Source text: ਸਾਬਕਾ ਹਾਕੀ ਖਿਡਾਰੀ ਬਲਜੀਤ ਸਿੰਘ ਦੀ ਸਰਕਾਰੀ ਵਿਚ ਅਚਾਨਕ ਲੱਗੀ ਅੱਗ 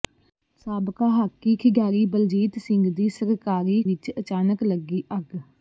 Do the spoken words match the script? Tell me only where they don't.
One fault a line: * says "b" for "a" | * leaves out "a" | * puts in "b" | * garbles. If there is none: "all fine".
all fine